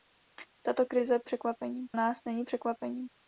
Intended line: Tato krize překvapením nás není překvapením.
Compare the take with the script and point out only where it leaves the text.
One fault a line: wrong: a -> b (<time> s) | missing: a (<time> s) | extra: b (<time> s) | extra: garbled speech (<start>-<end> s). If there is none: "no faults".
no faults